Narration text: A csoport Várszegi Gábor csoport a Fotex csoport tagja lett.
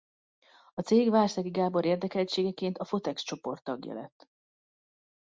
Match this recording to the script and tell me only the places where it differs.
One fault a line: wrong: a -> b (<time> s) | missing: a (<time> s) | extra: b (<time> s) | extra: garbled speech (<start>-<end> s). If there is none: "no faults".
wrong: csoport -> cég (0.8 s)
wrong: csoport -> érdekeltségeként (1.8 s)